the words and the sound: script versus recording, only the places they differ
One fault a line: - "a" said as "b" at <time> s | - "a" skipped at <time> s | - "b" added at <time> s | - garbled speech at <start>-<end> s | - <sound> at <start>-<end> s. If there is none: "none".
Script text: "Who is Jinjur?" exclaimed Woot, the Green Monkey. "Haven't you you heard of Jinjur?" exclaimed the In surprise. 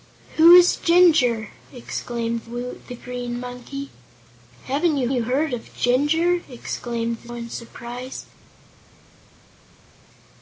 none